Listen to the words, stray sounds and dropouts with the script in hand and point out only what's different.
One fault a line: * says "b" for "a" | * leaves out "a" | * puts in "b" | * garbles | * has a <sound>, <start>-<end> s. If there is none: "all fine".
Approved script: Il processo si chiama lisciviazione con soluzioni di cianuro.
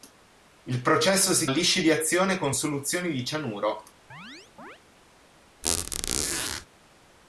* leaves out "chiama"
* has a chirp, 4.1-4.8 s
* has a squeak, 5.6-6.7 s